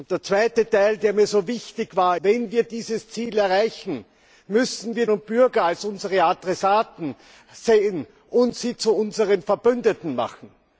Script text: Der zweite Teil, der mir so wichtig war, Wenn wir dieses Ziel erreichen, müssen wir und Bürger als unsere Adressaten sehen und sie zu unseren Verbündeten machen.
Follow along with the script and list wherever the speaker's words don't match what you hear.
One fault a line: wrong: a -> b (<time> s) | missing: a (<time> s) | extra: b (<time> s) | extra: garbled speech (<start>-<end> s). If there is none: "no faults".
no faults